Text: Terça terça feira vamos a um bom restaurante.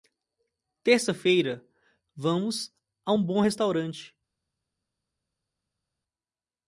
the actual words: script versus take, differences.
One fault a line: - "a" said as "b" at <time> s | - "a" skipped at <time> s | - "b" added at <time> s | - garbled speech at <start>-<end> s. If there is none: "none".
- "terça" skipped at 1.1 s